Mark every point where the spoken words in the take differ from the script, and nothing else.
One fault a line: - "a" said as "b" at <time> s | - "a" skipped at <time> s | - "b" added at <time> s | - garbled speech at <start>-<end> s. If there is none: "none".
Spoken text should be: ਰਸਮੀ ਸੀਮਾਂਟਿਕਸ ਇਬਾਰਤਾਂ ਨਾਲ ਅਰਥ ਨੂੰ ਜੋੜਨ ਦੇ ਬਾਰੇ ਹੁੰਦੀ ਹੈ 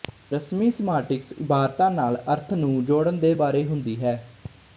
none